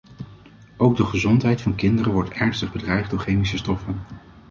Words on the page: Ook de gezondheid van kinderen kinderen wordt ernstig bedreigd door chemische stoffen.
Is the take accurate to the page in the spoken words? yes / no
no